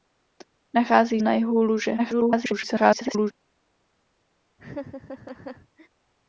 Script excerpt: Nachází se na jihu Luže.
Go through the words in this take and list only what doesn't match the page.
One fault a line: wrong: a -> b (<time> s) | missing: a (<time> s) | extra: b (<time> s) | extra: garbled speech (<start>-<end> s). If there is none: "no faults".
missing: se (1.2 s)
extra: garbled speech (2.0-3.3 s)